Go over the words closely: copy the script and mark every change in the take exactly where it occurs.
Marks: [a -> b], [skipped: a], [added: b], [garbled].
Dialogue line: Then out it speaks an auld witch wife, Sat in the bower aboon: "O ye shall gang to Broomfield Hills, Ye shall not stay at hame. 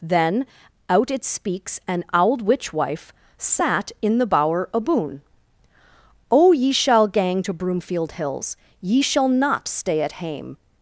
Then out it speaks an auld witch wife, Sat in the bower aboon: "O ye shall gang to Broomfield Hills, Ye shall not stay at hame.